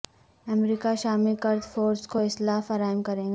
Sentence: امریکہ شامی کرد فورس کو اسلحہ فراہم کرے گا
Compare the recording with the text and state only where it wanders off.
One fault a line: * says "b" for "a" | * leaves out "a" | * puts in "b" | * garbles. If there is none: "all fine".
all fine